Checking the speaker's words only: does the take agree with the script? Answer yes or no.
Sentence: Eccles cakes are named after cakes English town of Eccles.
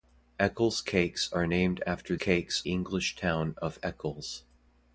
yes